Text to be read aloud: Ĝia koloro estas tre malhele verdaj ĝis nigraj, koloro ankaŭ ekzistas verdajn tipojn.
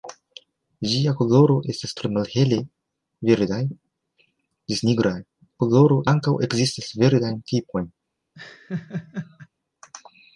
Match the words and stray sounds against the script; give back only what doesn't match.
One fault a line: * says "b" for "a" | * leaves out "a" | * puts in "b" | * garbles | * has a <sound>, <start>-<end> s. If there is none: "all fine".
* has a laugh, 8.3-9.5 s